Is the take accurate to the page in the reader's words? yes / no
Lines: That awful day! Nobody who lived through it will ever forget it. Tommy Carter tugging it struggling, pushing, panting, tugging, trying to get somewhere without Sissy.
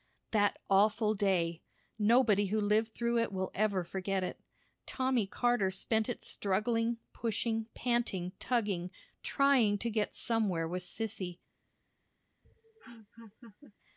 no